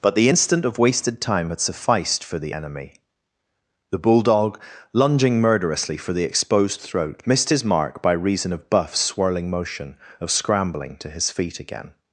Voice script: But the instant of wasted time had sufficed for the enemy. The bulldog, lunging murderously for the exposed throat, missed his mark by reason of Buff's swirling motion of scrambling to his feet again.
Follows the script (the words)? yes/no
yes